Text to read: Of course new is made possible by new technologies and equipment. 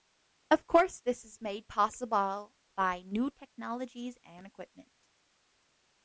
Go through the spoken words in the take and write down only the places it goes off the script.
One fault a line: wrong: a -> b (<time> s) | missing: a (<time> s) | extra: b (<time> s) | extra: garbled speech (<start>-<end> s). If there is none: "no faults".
wrong: new -> this (1.0 s)